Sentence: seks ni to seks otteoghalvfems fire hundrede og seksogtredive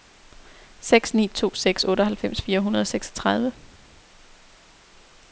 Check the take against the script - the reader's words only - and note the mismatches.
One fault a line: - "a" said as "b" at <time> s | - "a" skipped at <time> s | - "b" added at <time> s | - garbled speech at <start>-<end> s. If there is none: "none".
none